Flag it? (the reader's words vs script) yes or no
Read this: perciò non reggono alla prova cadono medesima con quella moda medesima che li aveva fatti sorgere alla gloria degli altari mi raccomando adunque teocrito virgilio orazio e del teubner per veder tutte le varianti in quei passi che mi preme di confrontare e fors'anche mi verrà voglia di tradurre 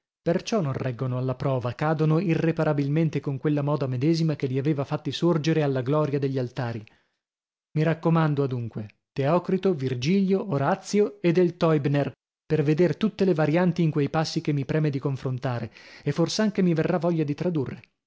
yes